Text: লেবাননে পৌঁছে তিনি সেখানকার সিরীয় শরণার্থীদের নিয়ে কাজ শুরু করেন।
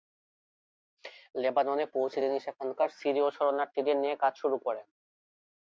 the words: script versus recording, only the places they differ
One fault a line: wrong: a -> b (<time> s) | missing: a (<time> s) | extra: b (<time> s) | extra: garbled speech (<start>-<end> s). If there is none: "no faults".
no faults